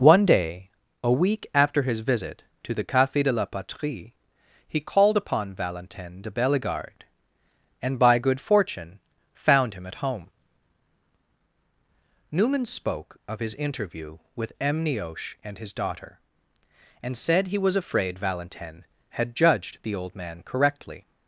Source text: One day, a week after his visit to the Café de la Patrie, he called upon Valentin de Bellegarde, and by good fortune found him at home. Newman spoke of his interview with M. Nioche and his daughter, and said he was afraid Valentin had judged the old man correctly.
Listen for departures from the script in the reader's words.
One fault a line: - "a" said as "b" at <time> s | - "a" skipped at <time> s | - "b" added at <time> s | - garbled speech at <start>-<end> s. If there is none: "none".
none